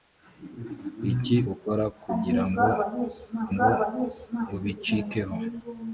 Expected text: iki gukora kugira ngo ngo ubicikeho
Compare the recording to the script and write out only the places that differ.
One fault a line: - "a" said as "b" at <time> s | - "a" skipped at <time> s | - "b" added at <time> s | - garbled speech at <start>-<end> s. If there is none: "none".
none